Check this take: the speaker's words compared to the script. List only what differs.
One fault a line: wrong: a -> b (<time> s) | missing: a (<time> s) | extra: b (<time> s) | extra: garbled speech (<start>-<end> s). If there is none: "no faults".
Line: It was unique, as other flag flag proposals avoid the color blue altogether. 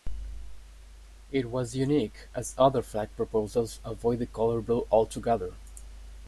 missing: flag (3.1 s)